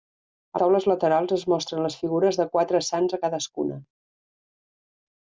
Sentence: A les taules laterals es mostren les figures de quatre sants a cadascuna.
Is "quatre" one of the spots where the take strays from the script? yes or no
no